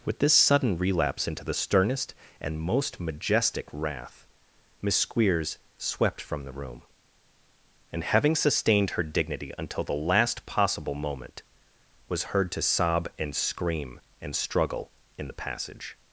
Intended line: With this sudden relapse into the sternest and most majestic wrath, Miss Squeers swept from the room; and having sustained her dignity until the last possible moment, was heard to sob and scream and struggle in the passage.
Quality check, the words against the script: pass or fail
pass